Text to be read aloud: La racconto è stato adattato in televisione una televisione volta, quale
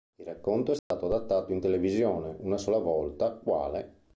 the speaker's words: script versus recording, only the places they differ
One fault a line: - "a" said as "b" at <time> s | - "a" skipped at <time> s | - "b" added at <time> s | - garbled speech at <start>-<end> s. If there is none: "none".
- "La" said as "Il" at 0.1 s
- "televisione" said as "sola" at 2.6 s